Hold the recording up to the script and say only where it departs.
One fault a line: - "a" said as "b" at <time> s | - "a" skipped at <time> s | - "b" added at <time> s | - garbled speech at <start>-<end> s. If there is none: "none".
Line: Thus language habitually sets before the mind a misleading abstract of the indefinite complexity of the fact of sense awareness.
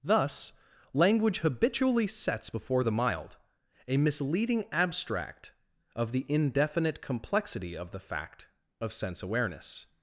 - "mind" said as "mild" at 2.9 s